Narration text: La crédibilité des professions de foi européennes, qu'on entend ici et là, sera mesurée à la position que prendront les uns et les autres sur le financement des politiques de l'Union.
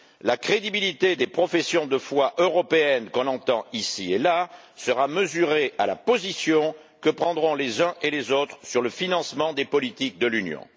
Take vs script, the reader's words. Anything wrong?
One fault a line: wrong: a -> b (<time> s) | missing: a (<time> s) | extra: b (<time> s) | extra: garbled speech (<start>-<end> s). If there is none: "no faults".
no faults